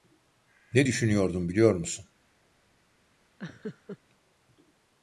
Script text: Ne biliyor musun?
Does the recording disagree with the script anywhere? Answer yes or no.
yes